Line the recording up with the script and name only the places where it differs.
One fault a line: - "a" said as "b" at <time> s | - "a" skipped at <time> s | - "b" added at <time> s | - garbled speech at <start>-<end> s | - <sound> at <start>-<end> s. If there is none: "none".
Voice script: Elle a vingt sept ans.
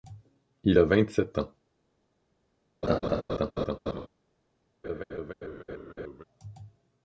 - "Elle" said as "Il" at 0.6 s
- laugh at 2.8-4.1 s
- laugh at 4.8-6.2 s